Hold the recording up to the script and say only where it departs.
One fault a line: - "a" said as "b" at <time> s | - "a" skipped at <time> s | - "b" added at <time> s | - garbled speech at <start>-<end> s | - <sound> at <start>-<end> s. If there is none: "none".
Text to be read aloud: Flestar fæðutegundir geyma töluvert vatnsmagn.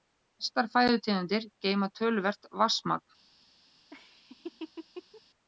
- laugh at 3.9-5.2 s